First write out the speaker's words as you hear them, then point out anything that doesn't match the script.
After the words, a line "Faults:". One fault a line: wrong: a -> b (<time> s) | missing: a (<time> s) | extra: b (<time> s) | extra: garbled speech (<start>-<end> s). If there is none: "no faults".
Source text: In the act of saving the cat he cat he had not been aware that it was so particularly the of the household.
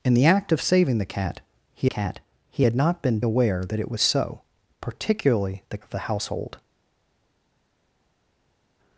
In the act of saving the cat he cat he had not been aware that it was so particularly the of the household.
Faults:
no faults